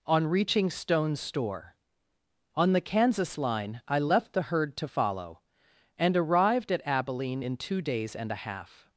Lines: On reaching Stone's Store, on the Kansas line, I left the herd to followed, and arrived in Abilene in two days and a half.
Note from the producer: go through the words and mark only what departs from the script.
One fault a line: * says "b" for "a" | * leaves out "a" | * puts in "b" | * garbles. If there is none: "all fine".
* says "follow" for "followed"
* says "at" for "in"